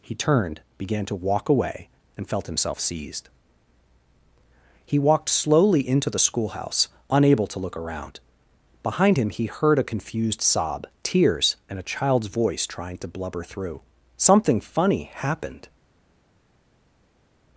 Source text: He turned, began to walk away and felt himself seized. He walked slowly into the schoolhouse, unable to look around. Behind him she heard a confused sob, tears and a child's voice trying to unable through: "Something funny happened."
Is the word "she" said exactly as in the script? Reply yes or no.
no